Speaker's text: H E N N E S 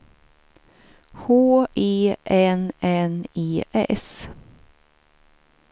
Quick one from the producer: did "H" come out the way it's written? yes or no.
yes